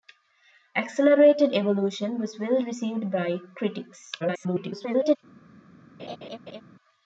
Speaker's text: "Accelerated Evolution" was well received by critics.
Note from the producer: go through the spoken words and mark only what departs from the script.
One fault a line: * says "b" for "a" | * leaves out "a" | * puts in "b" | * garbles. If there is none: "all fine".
* garbles